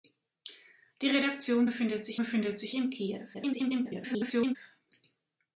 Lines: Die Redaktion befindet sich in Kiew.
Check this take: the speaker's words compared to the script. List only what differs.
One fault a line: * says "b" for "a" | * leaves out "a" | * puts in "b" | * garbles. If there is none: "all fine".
* puts in "befindet sich"
* garbles